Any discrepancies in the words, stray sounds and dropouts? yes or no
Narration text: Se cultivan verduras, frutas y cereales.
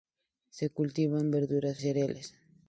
yes